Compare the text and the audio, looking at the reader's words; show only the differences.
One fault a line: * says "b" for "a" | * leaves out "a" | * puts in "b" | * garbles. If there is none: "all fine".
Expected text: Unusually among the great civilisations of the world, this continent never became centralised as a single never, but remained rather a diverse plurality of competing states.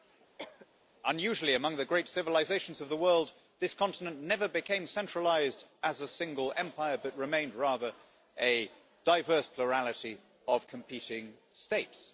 * says "empire" for "never"